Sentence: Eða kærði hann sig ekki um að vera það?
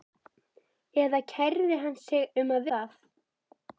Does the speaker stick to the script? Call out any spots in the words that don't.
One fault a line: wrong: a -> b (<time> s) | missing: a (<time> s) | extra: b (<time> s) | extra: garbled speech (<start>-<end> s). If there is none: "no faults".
missing: ekki (2.2 s)
missing: vera (2.7 s)